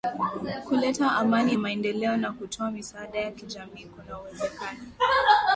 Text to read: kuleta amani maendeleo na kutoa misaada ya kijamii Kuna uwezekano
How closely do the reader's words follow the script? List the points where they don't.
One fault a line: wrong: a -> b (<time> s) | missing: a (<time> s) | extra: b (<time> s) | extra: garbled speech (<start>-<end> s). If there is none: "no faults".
no faults